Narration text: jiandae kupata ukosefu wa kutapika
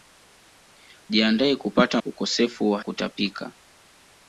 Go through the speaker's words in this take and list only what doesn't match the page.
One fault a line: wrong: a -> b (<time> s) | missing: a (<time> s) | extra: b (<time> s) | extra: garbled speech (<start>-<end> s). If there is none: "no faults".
no faults